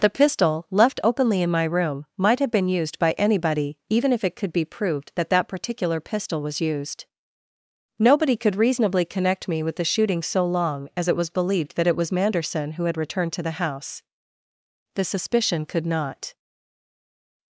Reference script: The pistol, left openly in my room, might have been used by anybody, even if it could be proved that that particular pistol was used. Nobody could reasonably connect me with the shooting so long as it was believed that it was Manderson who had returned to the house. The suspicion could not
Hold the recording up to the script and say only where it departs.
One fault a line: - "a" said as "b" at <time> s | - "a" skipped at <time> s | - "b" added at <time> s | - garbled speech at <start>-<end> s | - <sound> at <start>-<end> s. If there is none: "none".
none